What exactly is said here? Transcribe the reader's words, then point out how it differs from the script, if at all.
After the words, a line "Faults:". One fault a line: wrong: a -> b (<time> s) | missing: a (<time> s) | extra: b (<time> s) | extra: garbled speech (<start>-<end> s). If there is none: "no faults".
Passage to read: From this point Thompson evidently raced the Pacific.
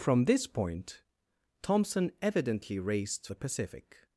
From this point Thompson evidently raced the Pacific.
Faults:
no faults